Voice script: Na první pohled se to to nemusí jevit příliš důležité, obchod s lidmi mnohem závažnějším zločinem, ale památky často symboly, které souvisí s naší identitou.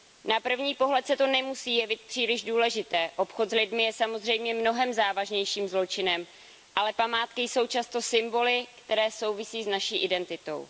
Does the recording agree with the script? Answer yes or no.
no